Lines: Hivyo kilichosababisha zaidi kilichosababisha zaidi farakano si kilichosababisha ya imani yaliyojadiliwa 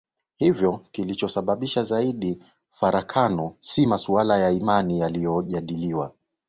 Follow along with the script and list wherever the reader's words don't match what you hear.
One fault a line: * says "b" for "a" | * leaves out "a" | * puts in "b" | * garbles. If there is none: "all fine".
* leaves out "kilichosababisha zaidi"
* says "masuala" for "kilichosababisha"